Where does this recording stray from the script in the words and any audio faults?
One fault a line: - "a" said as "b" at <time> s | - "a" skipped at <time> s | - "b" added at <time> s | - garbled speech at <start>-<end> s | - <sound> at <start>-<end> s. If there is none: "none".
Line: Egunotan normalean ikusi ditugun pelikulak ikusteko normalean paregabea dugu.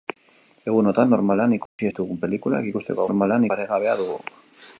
- dropout at 1.7-1.8 s